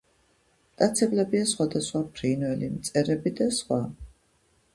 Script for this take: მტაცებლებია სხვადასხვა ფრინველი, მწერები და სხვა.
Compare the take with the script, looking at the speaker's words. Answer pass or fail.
pass